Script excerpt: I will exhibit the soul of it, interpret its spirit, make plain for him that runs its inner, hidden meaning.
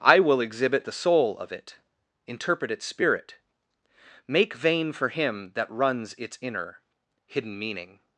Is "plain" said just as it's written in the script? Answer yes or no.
no